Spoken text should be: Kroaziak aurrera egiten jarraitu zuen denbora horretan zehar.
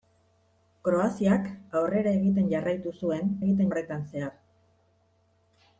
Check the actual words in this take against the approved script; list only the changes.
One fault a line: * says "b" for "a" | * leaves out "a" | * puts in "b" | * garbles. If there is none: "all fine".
* says "egiten" for "denbora"